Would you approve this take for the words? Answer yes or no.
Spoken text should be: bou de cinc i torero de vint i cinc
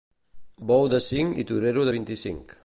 yes